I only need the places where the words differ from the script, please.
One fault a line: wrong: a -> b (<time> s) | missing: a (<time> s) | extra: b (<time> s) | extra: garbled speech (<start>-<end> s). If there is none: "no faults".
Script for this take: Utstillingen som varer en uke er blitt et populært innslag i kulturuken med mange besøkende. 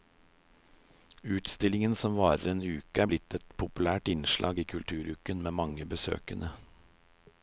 no faults